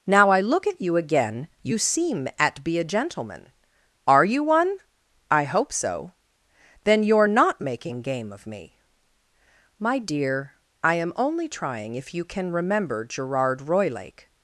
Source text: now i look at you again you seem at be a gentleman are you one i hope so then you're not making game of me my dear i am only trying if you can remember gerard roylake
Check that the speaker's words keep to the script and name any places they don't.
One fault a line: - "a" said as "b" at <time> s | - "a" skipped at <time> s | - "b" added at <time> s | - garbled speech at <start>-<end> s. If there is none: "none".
none